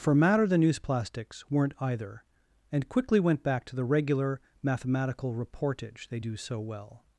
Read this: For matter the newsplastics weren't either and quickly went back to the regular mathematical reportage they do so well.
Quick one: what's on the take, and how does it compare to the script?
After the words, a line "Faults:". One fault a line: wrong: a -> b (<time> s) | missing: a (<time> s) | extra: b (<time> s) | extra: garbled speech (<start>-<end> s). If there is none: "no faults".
For matter the newsplastics weren't either and quickly went back to the regular mathematical reportage they do so well.
Faults:
no faults